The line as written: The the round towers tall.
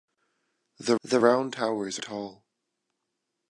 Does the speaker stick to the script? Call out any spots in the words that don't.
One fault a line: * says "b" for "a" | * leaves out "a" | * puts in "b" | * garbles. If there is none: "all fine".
all fine